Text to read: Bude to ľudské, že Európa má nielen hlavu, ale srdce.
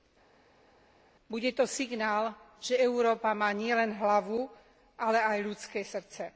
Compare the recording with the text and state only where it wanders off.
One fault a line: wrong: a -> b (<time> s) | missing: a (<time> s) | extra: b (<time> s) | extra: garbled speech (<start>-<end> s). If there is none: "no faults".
wrong: ľudské -> signál (1.6 s)
extra: aj ľudské (5.2 s)